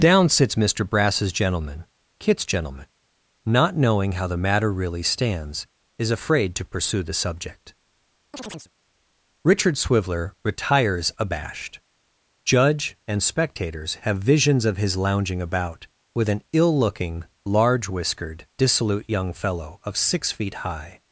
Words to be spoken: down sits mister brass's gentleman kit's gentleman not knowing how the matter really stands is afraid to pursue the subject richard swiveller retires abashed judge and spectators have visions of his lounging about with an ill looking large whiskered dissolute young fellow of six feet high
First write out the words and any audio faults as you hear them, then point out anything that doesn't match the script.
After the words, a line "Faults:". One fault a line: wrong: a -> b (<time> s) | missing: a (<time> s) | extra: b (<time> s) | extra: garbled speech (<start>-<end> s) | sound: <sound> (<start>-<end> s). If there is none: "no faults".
down sits mister brass's gentleman kit's gentleman not knowing how the matter really stands is afraid to pursue the subject richard swiveller retires abashed judge and spectators have visions of his lounging about with an ill looking large whiskered dissolute young fellow of six feet high
Faults:
sound: chirp (8.3-8.7 s)